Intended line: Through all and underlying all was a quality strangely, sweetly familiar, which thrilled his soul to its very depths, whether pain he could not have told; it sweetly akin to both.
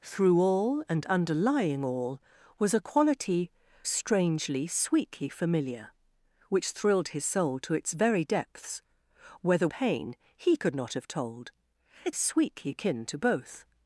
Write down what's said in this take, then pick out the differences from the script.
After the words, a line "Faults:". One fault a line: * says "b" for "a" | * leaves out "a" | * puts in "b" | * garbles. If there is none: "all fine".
Through all and underlying all was a quality strangely, sweetly familiar, which thrilled his soul to its very depths, whether pain he could not have told; it sweetly akin to both.
Faults:
all fine